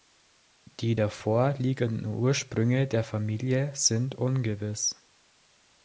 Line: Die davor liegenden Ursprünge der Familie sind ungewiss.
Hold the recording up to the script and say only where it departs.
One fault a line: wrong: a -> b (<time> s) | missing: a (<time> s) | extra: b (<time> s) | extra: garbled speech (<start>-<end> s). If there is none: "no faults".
no faults